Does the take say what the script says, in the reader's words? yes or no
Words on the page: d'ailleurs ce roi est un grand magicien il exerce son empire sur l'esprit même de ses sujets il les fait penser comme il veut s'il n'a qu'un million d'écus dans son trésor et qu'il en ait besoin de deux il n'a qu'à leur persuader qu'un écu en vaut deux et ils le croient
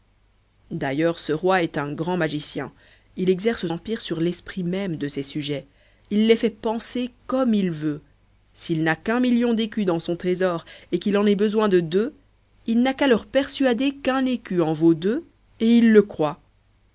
no